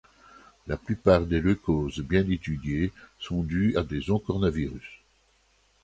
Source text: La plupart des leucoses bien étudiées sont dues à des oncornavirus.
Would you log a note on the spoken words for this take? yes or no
no